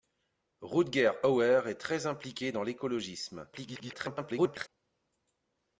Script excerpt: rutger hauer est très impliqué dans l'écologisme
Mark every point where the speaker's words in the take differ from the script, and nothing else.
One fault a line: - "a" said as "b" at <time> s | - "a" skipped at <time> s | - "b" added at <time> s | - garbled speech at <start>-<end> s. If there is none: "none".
- garbled speech at 3.5-4.7 s